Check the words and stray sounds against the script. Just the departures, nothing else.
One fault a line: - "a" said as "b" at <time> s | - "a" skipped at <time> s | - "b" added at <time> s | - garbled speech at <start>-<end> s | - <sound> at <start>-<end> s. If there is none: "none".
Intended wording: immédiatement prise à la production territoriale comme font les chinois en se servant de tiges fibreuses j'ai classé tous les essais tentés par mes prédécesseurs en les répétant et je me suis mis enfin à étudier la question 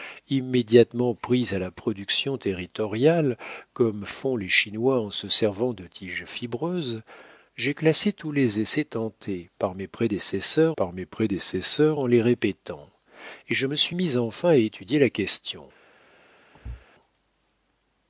- "par mes prédécesseurs" added at 10.8 s
- thud at 16.5-16.9 s